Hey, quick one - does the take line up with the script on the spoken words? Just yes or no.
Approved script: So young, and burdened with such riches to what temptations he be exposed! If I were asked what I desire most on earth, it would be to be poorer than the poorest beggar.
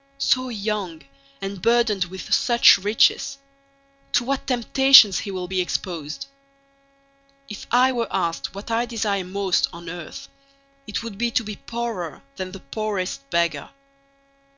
no